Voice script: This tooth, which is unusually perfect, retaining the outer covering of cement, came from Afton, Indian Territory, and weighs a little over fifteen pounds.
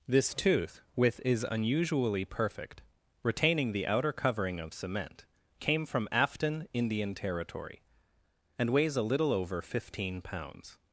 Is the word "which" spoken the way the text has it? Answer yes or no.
no